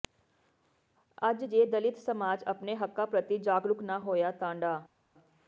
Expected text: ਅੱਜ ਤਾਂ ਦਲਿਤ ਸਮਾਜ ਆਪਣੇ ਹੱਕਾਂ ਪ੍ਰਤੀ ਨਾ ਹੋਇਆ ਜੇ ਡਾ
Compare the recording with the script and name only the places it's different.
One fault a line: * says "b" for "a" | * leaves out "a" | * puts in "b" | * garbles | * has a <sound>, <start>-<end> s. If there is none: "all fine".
* says "ਜੇ" for "ਤਾਂ"
* puts in "ਜਾਗਰੂਕ"
* says "ਤਾਂ" for "ਜੇ"